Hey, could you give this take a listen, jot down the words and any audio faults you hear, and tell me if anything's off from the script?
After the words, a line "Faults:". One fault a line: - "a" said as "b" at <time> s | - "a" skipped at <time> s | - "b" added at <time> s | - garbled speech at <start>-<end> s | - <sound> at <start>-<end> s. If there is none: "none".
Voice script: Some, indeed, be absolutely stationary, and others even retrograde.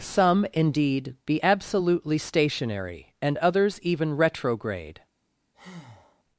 Some, indeed, be absolutely stationary, and others even retrograde.
Faults:
- breath at 5.5-6.2 s